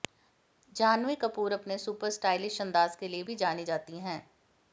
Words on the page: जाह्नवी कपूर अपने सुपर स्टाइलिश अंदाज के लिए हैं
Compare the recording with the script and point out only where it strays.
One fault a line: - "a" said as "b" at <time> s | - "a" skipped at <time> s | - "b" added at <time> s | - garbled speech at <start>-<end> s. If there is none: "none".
- "भी जानी जाती" added at 3.2 s